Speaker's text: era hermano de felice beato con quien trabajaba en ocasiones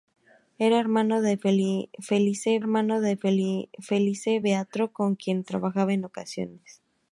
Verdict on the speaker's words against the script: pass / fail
fail